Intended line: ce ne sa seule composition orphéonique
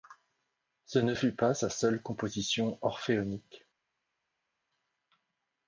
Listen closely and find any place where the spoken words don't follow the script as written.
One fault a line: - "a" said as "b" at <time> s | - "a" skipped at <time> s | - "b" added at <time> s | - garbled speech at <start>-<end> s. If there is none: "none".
- "fut pas" added at 1.1 s